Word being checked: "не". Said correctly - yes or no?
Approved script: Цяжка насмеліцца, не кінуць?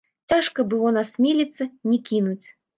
yes